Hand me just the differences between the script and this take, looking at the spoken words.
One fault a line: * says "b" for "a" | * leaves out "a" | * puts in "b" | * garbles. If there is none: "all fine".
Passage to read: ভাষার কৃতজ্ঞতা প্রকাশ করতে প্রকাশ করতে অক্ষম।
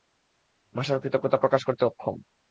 * leaves out "প্রকাশ করতে"